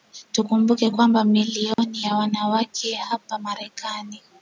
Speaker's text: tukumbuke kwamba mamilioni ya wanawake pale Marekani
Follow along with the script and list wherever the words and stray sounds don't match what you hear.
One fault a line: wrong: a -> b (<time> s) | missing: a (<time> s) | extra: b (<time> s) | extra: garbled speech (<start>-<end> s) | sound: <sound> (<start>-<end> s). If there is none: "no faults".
sound: dropout (1.7-1.8 s)
wrong: pale -> hapa (3.0 s)